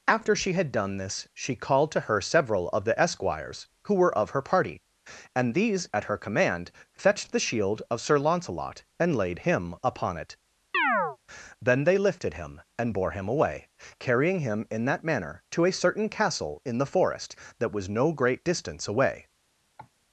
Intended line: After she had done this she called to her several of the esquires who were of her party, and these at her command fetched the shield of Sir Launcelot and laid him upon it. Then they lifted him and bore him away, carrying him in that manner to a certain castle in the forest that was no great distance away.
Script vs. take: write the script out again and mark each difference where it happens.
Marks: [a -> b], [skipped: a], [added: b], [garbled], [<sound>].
After she had done this she called to her several of the esquires who were of her party, and these at her command fetched the shield of Sir Launcelot and laid him upon it. [chirp] Then they lifted him and bore him away, carrying him in that manner to a certain castle in the forest that was no great distance away. [cough]